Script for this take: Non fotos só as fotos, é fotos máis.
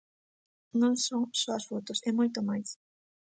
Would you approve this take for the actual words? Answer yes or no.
no